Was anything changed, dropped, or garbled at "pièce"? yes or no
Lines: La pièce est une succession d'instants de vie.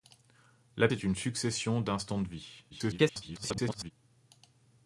yes